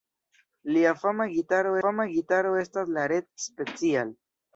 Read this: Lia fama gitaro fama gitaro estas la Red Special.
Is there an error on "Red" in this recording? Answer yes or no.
no